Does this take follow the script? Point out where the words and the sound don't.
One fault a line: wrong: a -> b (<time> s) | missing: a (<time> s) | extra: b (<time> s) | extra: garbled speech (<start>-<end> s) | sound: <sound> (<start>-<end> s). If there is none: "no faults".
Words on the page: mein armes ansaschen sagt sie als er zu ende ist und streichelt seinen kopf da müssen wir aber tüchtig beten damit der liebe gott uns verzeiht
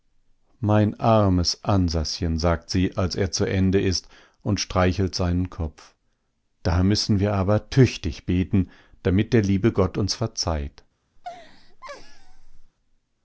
sound: laugh (11.2-12.7 s)